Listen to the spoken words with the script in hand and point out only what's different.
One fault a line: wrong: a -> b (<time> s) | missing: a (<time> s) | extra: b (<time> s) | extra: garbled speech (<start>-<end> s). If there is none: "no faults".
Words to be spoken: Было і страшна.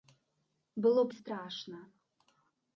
no faults